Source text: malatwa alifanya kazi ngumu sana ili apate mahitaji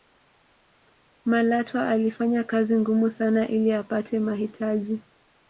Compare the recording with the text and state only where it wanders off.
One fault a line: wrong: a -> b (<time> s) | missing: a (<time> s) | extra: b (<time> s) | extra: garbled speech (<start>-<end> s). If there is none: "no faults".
no faults